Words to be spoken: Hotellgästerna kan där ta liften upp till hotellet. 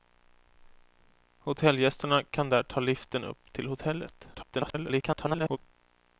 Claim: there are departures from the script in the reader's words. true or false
true